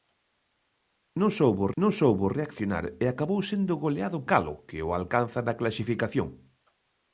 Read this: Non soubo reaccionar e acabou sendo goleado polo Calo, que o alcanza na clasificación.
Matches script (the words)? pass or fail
fail